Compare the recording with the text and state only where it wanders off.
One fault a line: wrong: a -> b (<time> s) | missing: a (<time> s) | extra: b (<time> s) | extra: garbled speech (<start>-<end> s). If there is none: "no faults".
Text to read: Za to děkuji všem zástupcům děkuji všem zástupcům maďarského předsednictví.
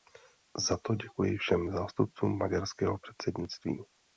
missing: děkuji všem zástupcům (2.4 s)